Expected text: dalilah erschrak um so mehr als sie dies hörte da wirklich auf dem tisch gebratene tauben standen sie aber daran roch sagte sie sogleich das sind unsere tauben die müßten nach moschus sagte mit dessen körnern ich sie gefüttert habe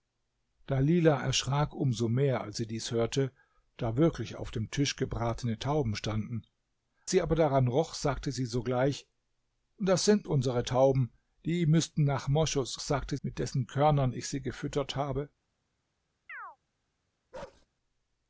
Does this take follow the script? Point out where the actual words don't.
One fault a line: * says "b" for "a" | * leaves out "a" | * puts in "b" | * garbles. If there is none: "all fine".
all fine